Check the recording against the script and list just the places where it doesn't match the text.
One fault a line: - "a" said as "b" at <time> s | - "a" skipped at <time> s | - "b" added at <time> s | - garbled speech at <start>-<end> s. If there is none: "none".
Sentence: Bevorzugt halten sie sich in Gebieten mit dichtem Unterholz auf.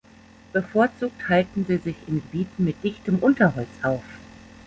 none